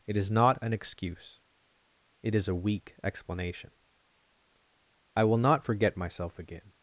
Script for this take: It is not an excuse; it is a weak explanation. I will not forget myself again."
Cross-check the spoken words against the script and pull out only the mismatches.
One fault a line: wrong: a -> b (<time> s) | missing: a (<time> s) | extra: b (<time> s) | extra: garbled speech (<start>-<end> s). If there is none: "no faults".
no faults